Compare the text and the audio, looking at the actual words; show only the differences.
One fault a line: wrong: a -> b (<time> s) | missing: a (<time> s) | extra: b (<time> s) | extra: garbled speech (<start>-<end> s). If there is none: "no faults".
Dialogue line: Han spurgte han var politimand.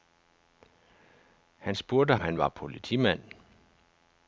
no faults